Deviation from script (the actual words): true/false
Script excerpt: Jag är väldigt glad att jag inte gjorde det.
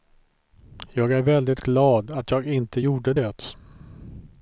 false